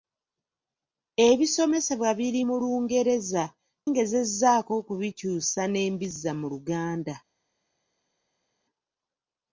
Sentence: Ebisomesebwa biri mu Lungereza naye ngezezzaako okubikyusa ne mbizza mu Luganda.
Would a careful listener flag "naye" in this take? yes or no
yes